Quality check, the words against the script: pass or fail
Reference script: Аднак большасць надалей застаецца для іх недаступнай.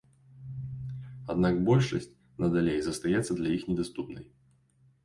pass